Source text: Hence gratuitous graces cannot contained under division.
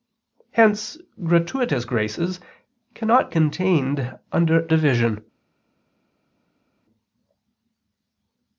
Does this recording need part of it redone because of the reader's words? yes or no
no